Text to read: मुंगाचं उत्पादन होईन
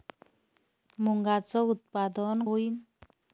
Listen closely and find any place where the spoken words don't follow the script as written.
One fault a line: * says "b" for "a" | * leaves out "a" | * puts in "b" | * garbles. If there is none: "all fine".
all fine